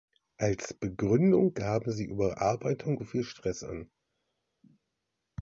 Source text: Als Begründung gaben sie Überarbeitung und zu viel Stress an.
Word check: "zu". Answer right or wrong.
wrong